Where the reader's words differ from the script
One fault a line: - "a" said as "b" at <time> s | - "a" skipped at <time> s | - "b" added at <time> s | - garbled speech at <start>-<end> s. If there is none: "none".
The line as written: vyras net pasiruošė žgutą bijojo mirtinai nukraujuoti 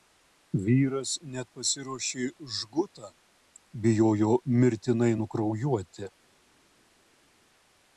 none